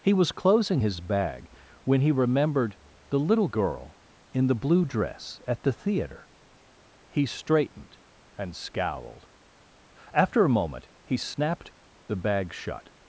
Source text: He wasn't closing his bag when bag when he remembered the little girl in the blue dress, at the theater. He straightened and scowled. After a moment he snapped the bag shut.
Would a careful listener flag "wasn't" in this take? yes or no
yes